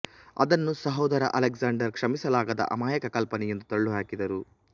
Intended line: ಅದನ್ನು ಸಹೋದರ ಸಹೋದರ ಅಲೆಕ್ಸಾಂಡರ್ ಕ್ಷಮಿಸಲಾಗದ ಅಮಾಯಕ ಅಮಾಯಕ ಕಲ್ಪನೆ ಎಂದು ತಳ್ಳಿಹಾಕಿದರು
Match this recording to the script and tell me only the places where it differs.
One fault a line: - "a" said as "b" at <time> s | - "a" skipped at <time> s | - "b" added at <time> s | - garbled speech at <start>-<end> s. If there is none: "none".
- "ಸಹೋದರ" skipped at 1.2 s
- "ಅಮಾಯಕ" skipped at 3.1 s